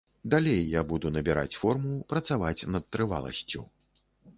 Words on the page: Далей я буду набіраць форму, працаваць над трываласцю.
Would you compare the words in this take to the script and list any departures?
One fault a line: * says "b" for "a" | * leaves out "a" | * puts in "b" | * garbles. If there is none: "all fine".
all fine